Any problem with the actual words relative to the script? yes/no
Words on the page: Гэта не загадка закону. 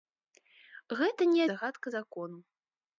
no